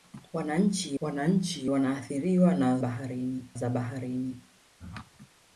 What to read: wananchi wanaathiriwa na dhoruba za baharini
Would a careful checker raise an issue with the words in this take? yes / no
yes